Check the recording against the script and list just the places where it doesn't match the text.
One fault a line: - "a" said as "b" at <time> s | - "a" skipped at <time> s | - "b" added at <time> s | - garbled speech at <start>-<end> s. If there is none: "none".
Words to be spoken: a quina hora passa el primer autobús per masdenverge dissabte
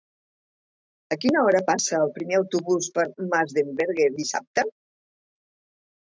none